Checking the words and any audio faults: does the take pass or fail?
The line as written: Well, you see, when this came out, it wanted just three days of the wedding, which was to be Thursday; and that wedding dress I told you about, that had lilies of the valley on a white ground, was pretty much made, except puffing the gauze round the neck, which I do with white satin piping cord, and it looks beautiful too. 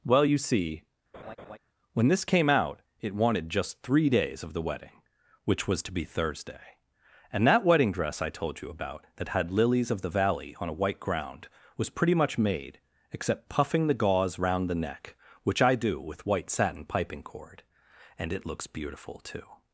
fail